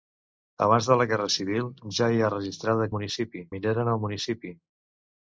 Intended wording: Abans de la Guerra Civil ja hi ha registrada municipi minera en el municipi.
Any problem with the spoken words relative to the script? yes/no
no